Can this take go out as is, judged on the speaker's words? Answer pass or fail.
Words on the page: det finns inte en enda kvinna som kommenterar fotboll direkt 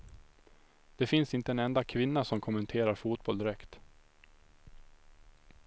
pass